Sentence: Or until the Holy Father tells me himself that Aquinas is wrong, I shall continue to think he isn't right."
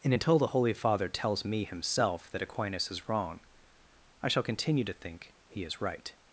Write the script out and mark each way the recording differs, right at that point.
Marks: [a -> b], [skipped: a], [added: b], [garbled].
[Or -> And] until the Holy Father tells me himself that Aquinas is wrong, I shall continue to think he [isn't -> is] right."